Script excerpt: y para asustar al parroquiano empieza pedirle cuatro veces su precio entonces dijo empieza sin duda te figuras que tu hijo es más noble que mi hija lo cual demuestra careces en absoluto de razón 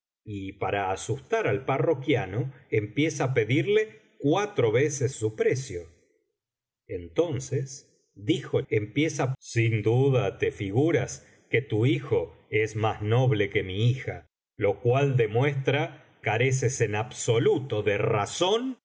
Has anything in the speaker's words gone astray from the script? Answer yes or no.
no